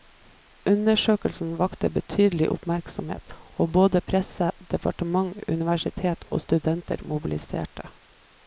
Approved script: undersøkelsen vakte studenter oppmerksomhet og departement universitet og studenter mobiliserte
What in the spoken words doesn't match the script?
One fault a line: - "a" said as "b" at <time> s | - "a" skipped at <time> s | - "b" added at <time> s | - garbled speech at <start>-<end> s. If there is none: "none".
- "studenter" said as "betydelig" at 2.0 s
- "både presse" added at 3.8 s